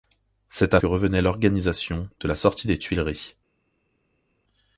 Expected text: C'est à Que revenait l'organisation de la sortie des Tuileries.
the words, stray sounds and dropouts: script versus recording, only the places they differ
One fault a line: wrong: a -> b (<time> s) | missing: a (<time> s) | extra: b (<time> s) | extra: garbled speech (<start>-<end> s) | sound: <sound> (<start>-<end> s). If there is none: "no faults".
no faults